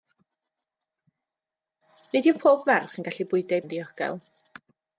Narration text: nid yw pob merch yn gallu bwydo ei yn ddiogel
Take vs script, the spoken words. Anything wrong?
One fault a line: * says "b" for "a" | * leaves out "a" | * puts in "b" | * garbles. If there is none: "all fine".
all fine